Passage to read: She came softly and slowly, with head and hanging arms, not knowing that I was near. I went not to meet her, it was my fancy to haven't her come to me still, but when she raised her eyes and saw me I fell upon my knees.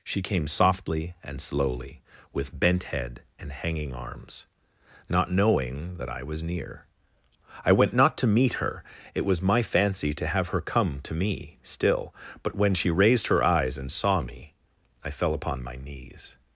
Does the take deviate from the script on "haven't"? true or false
true